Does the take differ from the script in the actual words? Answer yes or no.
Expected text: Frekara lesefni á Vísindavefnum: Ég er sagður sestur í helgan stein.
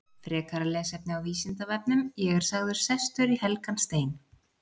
no